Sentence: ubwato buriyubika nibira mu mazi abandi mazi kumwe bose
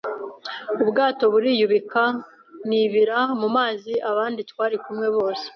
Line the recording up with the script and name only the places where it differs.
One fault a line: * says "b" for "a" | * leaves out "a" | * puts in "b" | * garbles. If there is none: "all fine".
* says "twari" for "mazi"